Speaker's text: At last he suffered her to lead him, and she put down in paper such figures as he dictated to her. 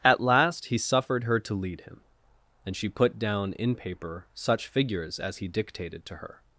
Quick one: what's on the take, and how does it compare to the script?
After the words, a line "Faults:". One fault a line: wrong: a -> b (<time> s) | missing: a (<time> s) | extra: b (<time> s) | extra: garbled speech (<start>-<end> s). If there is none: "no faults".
At last he suffered her to lead him, and she put down in paper such figures as he dictated to her.
Faults:
no faults